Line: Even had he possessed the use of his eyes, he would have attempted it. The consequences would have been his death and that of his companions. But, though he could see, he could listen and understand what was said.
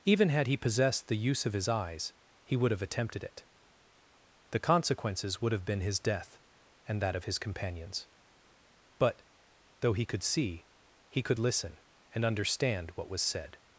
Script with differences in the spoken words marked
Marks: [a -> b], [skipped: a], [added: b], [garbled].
Even had he possessed the use of his eyes, he would have attempted it. The consequences would have been his death and that of his companions. But, though he could see, he could listen and understand what was said.